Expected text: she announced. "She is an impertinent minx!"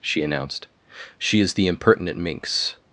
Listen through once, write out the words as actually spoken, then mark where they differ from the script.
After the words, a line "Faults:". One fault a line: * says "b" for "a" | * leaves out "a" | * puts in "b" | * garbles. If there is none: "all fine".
she announced. "She is the impertinent minx!"
Faults:
* says "the" for "an"